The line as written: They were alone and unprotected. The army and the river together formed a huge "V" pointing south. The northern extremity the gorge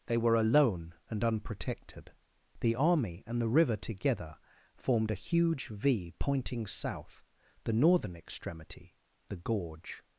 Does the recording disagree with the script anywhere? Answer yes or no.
no